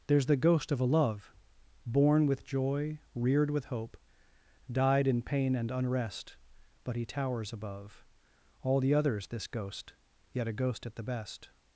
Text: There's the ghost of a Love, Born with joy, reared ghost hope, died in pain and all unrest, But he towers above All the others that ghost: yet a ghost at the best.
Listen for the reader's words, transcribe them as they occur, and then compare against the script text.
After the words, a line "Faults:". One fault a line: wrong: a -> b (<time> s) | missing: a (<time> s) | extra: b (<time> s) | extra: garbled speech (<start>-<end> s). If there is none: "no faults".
There's the ghost of a Love, Born with joy, reared with hope, died in pain and unrest, But he towers above All the others this ghost: yet a ghost at the best.
Faults:
wrong: ghost -> with (3.5 s)
missing: all (5.7 s)
wrong: that -> this (9.3 s)